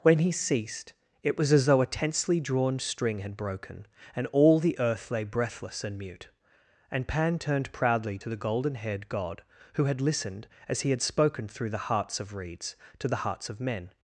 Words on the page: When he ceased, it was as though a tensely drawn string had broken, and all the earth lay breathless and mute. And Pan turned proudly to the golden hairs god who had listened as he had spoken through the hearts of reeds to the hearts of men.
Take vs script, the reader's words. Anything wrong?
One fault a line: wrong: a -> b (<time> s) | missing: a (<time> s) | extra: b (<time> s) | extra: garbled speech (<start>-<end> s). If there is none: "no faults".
wrong: hairs -> haired (8.8 s)